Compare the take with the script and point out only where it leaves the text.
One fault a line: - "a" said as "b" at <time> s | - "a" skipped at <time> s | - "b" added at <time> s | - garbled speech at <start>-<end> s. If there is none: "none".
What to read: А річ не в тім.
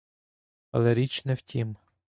- "А" said as "Але" at 0.7 s